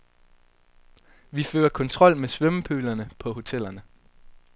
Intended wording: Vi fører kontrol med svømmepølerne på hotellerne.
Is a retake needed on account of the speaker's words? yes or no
no